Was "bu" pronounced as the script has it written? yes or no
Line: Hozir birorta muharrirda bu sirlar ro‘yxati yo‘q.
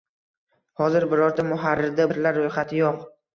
no